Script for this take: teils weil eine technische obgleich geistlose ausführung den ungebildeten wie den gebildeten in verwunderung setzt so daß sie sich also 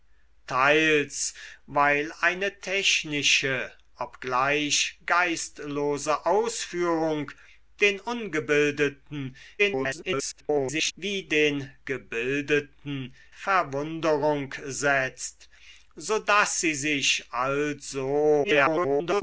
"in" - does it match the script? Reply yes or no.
no